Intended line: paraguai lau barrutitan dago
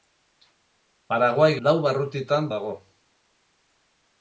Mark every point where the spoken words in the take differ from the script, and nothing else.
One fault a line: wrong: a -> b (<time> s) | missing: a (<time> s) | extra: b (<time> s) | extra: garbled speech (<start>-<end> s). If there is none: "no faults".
no faults